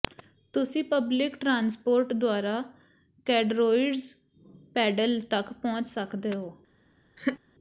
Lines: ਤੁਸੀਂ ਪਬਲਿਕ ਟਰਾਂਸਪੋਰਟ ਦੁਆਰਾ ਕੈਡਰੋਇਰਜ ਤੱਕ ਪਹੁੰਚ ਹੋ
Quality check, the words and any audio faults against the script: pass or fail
fail